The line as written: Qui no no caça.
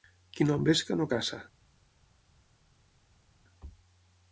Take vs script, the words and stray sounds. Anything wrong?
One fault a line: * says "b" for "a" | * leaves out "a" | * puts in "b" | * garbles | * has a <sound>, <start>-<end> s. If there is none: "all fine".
* puts in "envesca"